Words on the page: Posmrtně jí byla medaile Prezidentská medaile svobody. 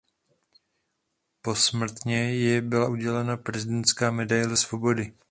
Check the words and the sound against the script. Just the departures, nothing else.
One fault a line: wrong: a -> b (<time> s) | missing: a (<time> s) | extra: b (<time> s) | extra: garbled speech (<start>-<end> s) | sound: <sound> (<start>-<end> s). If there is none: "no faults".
wrong: medaile -> udělena (2.9 s)